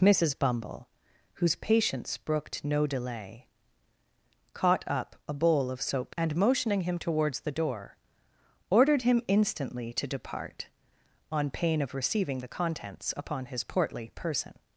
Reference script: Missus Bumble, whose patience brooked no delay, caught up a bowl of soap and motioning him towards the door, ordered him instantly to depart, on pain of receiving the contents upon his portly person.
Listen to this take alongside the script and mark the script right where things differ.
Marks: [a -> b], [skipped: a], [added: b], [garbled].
Missus Bumble, whose patience brooked no delay, caught up a bowl of soap and motioning him towards the door, ordered him instantly to depart, on pain of receiving the contents upon his portly person.